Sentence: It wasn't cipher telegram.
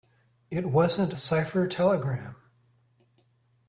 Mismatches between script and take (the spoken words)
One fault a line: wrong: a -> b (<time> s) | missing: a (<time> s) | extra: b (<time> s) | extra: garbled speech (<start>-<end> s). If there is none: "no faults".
no faults